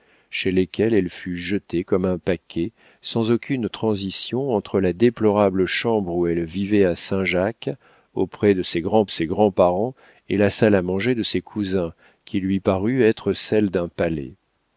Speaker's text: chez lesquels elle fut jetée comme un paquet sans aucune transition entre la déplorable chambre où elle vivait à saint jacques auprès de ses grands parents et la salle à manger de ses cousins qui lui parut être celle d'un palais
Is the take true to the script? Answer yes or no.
no